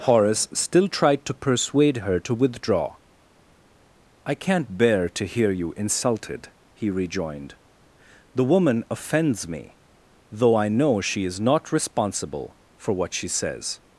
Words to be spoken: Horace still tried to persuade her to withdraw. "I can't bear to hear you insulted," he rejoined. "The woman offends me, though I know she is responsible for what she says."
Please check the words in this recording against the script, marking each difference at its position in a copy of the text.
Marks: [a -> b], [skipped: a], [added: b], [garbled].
Horace still tried to persuade her to withdraw. "I can't bear to hear you insulted," he rejoined. "The woman offends me, though I know she is [added: not] responsible for what she says."